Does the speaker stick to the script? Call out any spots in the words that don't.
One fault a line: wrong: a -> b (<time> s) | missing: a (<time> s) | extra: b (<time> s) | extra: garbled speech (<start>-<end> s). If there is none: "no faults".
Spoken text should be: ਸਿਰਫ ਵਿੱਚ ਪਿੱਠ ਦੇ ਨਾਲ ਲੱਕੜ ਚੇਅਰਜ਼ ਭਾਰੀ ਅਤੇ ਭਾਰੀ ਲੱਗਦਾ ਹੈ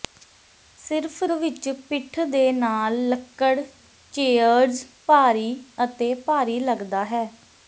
no faults